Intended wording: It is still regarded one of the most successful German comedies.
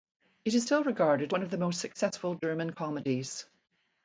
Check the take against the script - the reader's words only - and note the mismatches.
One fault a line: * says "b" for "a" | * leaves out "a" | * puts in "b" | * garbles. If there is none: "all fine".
all fine